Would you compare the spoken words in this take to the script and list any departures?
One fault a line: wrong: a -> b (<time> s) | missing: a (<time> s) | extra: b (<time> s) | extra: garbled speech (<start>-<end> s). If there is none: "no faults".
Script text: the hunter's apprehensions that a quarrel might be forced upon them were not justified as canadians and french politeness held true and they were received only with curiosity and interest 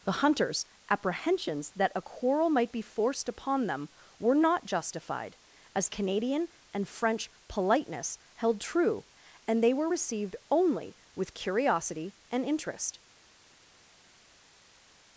wrong: canadians -> canadian (5.9 s)